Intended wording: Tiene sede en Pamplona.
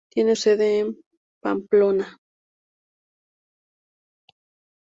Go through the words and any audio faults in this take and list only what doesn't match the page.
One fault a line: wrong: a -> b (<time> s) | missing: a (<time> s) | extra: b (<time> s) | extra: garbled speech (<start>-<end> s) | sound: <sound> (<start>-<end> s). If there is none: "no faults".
no faults